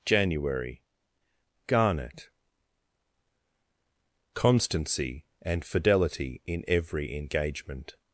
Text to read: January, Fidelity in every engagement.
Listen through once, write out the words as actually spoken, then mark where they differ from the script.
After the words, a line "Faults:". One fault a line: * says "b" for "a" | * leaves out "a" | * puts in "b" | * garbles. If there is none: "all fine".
January, Garnet. Constancy and fidelity in every engagement.
Faults:
* puts in "Garnet Constancy and"